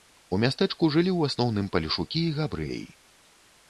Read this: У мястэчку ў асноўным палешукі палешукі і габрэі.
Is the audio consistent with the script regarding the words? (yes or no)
no